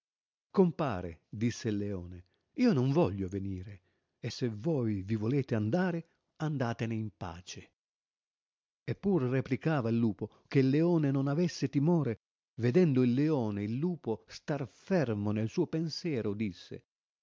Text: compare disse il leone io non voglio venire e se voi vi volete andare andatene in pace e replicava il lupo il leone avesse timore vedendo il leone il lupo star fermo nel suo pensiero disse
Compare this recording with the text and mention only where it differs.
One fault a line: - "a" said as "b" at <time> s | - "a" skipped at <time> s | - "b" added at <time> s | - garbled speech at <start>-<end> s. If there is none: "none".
- "pur" added at 8.9 s
- "che" added at 10.5 s
- "non" added at 11.1 s